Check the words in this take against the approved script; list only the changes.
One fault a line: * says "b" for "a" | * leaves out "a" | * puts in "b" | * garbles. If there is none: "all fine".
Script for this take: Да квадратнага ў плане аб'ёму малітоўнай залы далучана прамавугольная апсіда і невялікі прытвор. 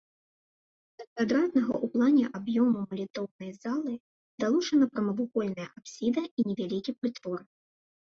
all fine